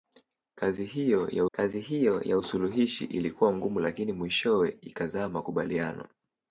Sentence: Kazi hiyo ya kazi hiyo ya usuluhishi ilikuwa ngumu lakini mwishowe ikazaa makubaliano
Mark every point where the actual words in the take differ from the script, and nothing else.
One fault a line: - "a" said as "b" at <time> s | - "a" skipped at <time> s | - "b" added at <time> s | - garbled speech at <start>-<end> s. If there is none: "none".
none